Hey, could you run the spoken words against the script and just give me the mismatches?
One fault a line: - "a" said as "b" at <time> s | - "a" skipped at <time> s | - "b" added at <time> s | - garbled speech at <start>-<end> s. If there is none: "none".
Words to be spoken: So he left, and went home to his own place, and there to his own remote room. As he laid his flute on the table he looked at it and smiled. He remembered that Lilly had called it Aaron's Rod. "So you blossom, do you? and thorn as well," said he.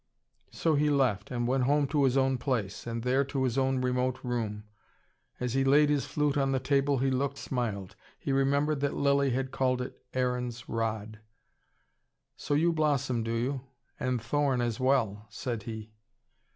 - "at it and" skipped at 7.4 s